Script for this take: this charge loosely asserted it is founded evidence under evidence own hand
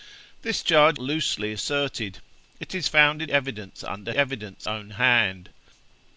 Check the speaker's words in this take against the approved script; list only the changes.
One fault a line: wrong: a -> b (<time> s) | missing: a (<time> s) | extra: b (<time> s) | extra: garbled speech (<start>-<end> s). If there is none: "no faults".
no faults